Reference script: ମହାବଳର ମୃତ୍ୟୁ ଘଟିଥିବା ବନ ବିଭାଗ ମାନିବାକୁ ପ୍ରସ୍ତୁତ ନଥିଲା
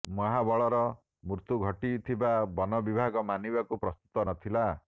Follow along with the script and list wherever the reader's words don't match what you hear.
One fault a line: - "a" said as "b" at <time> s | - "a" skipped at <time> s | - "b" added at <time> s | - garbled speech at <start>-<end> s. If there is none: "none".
none